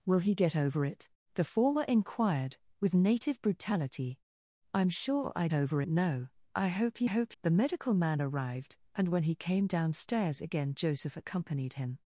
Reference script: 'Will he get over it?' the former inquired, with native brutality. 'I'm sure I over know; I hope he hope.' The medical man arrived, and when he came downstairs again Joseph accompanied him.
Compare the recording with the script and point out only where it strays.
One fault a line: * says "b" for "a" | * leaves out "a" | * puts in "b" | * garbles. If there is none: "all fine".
all fine